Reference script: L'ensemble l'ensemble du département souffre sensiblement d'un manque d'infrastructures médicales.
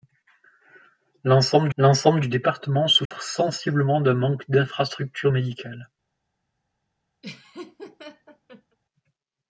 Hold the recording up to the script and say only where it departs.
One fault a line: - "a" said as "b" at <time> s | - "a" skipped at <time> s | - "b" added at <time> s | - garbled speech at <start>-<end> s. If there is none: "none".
none